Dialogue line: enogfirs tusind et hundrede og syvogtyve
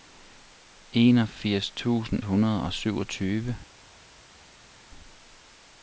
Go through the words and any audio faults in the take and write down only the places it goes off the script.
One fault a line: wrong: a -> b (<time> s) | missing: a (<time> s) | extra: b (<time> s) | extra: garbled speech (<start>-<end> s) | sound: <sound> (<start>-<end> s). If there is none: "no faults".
missing: et (2.2 s)